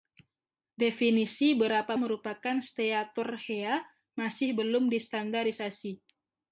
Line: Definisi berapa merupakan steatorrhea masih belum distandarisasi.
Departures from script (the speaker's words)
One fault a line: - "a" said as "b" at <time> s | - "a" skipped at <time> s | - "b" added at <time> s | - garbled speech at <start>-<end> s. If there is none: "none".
none